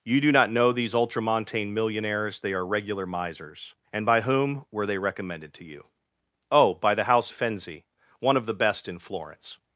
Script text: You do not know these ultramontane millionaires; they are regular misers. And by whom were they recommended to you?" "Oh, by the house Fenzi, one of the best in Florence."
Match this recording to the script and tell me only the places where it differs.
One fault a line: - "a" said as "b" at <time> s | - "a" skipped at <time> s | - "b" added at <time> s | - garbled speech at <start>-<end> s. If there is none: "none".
none